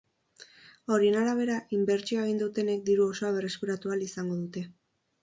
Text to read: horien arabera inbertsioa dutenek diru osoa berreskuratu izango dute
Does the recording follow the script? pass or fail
fail